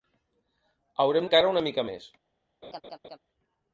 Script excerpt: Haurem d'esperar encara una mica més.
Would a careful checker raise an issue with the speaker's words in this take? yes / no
yes